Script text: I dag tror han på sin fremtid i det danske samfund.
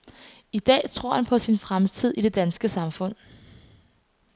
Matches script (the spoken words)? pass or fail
pass